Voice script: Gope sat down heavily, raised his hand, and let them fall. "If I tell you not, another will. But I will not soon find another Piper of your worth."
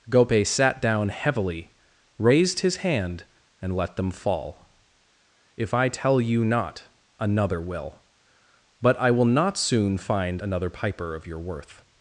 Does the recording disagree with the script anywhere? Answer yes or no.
no